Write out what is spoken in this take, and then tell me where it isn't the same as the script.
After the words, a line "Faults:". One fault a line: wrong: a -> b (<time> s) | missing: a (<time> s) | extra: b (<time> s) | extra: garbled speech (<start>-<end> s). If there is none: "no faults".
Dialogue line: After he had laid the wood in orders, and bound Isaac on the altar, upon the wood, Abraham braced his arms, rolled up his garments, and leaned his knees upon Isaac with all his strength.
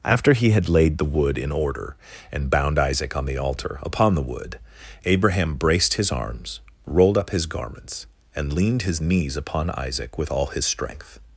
After he had laid the wood in order, and bound Isaac on the altar, upon the wood, Abraham braced his arms, rolled up his garments, and leaned his knees upon Isaac with all his strength.
Faults:
wrong: orders -> order (1.5 s)